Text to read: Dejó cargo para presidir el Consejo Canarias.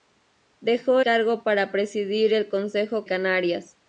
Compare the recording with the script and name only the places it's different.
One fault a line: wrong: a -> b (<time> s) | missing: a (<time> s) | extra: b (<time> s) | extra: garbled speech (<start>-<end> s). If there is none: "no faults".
no faults